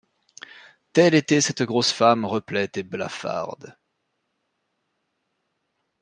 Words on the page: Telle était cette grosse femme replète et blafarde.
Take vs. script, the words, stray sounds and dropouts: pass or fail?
pass